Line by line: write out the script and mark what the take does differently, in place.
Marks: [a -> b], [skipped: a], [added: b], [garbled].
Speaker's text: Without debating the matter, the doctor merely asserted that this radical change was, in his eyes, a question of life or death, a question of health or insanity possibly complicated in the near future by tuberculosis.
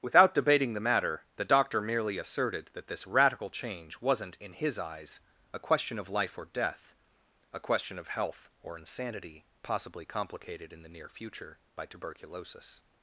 Without debating the matter, the doctor merely asserted that this radical change [was, -> wasn't] in his eyes, a question of life or death, a question of health or insanity possibly complicated in the near future by tuberculosis.